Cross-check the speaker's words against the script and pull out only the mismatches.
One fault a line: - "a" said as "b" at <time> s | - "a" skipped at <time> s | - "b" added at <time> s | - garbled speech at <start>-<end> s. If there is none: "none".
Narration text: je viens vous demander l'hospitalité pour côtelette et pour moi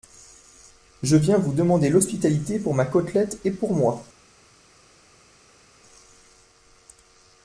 - "ma" added at 2.7 s